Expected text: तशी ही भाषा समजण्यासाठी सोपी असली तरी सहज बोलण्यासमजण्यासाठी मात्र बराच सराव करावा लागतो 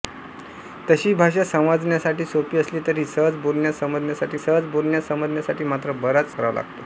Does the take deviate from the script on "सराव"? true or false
true